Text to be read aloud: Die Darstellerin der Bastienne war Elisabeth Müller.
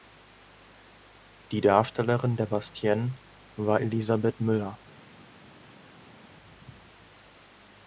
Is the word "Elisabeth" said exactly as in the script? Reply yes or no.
yes